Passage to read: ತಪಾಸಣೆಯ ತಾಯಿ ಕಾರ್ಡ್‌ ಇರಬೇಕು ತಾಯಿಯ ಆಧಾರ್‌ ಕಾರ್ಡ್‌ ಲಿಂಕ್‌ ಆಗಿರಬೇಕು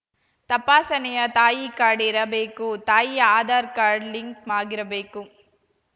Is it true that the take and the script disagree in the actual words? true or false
false